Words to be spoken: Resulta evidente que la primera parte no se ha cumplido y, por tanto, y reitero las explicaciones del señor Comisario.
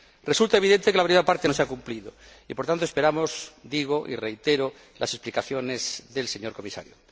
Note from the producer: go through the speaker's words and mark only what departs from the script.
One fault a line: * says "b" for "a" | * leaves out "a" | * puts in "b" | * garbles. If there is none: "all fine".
* puts in "esperamos digo"